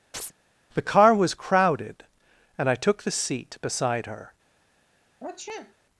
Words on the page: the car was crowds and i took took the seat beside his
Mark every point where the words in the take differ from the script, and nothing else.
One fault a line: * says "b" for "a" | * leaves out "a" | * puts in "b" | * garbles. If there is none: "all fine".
* says "crowded" for "crowds"
* leaves out "took"
* says "her" for "his"